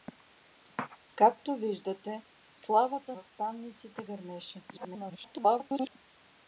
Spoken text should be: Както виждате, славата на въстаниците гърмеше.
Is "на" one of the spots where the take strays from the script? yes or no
yes